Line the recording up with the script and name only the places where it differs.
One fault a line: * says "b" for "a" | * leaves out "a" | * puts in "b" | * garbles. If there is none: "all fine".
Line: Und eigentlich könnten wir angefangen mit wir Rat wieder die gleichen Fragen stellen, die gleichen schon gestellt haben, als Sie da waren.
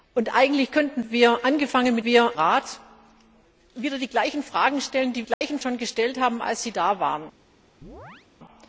all fine